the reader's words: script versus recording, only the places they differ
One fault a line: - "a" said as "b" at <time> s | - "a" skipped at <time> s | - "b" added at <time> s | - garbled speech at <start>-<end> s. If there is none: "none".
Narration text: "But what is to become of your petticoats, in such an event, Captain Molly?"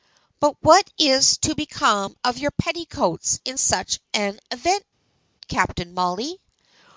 none